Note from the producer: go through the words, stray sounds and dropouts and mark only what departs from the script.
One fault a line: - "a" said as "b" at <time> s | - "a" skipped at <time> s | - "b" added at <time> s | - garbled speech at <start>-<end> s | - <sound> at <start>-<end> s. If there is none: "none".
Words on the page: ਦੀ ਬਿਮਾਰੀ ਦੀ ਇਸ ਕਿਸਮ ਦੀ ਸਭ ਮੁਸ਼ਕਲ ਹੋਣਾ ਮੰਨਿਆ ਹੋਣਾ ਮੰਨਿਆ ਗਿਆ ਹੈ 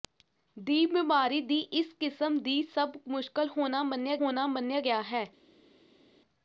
none